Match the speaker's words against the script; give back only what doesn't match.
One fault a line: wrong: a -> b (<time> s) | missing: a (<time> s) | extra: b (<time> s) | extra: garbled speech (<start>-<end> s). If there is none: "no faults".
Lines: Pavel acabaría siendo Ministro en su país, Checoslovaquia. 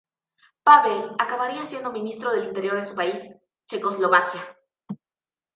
extra: del Interior (2.3 s)